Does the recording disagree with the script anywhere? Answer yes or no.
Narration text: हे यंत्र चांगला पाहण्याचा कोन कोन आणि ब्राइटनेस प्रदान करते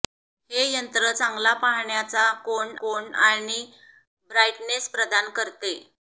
no